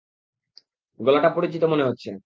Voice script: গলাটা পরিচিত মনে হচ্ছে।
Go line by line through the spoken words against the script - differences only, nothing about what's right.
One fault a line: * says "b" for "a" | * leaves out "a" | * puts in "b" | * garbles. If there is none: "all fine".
all fine